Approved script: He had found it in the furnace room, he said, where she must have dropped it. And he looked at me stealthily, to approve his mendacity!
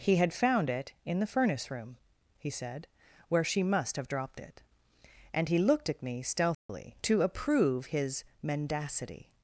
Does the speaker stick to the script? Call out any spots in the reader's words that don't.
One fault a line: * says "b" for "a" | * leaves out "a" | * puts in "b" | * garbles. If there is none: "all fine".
all fine